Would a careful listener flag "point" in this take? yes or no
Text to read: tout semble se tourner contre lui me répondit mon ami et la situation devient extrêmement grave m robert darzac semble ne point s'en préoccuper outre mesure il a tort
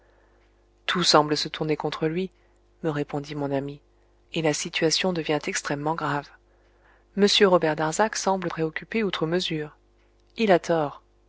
yes